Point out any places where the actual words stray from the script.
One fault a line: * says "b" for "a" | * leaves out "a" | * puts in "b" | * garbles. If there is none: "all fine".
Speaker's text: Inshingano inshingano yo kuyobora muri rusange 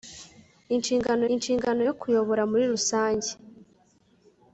all fine